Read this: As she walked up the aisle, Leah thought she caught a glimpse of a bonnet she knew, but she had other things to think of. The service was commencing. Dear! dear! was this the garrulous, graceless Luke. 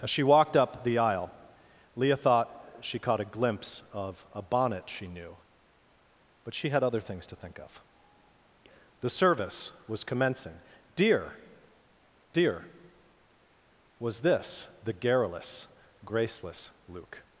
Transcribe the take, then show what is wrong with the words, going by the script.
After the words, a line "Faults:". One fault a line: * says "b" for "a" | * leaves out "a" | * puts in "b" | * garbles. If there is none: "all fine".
As she walked up the aisle, Leah thought she caught a glimpse of a bonnet she knew, but she had other things to think of. The service was commencing. Dear! dear! was this the garrulous, graceless Luke.
Faults:
all fine